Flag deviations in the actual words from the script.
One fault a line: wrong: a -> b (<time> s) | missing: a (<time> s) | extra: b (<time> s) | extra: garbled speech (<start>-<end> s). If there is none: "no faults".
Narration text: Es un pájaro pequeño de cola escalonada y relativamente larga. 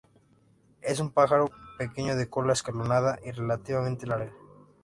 no faults